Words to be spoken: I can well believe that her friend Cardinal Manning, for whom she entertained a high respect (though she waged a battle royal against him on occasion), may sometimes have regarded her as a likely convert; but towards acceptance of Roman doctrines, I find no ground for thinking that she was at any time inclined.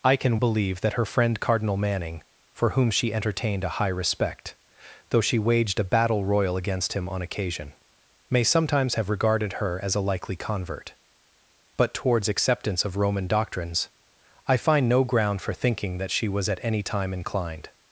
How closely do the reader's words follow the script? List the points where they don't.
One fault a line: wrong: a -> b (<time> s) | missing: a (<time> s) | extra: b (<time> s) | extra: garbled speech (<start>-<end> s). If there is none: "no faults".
missing: well (0.4 s)